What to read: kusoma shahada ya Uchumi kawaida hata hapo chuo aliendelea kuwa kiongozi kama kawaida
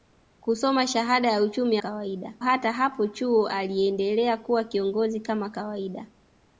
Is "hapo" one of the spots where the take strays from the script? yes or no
no